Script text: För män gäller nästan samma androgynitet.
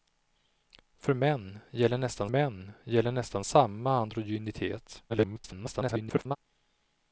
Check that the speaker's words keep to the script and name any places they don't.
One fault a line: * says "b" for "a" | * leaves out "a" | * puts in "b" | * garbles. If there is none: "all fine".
* puts in "män gäller nästan"
* garbles